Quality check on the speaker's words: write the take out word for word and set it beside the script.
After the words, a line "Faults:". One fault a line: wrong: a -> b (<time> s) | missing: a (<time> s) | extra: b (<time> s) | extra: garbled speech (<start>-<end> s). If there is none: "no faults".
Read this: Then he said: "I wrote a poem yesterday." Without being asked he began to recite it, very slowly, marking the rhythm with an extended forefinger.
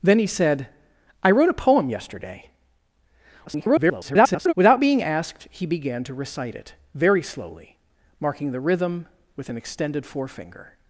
Then he said: "I wrote a poem yesterday." [garbled] Without being asked he began to recite it, very slowly, marking the rhythm with an extended forefinger.
Faults:
extra: garbled speech (3.5-4.5 s)